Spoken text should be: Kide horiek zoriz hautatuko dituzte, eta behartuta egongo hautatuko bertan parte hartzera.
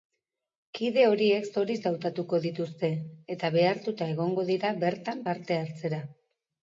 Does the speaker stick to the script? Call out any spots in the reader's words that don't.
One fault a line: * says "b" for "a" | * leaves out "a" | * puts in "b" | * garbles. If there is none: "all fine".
* says "dira" for "hautatuko"